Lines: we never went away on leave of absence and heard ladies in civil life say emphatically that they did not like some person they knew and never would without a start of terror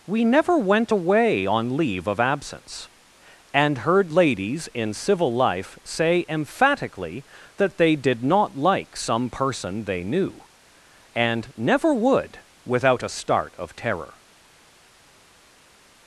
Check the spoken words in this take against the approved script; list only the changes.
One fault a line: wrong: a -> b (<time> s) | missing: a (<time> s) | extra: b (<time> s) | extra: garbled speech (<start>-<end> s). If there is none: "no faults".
no faults